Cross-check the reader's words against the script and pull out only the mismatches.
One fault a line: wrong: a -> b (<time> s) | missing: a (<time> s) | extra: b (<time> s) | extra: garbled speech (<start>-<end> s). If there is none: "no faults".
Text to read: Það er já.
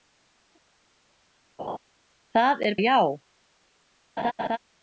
no faults